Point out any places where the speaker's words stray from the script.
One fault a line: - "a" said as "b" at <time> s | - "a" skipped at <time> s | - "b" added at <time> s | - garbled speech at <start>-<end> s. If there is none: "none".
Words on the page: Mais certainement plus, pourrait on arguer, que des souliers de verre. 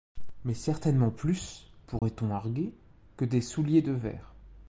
none